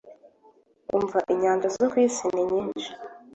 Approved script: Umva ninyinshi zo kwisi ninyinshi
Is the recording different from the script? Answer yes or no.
yes